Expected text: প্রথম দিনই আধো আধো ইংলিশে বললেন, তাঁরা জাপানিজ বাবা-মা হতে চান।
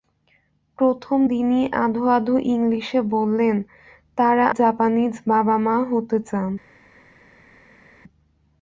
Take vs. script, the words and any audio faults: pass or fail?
pass